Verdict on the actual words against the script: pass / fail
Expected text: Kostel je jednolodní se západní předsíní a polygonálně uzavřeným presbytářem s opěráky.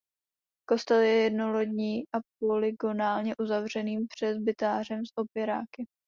fail